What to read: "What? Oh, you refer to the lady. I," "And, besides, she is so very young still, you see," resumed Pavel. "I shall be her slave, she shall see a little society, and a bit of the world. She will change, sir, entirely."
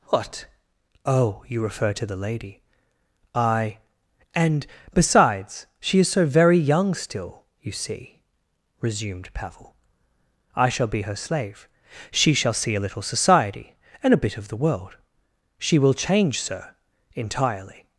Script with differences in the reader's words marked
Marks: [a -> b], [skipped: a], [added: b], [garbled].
"What? Oh, you refer to the lady. I," "And, besides, she is so very young still, you see," resumed Pavel. "I shall be her slave, she shall see a little society, and a bit of the world. She will change, sir, entirely."